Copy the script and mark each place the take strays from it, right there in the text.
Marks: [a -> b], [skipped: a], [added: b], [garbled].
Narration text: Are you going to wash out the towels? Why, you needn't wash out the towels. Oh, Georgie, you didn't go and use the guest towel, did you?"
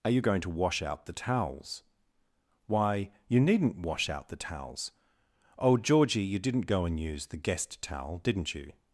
Are you going to wash out the towels? Why, you needn't wash out the towels. Oh, Georgie, you didn't go and use the guest towel, [did -> didn't] you?"